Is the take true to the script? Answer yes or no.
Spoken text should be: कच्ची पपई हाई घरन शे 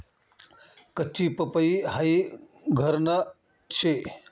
yes